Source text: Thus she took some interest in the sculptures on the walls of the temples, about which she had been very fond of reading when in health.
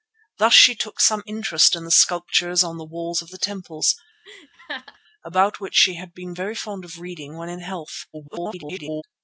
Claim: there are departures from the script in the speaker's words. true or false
true